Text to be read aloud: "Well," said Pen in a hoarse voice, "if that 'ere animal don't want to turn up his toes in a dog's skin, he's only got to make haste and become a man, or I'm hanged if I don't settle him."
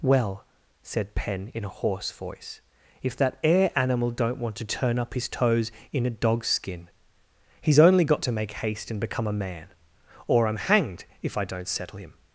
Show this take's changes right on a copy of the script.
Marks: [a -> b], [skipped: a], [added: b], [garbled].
"Well," said Pen in a hoarse voice, "if that 'ere animal don't want to turn up his toes in a dog's skin, he's only got to make haste and become a man, or I'm hanged if I don't settle him."